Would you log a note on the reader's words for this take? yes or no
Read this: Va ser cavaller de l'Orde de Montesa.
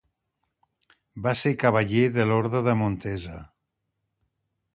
no